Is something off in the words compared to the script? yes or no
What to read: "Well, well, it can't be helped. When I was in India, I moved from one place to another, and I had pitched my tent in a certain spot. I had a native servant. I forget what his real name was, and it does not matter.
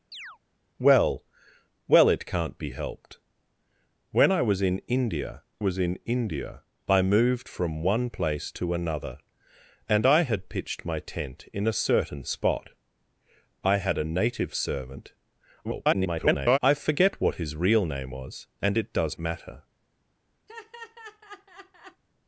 yes